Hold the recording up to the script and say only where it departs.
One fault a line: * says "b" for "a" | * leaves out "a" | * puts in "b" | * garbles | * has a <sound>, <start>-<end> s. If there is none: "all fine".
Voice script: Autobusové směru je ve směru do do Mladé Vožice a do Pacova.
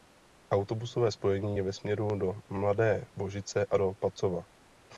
* says "spojení" for "směru"
* leaves out "do"